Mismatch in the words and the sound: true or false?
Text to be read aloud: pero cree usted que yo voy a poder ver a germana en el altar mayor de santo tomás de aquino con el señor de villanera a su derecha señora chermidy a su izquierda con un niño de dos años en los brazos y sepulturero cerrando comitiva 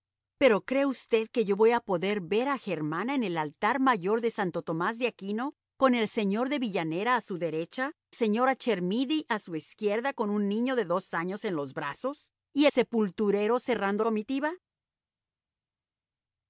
false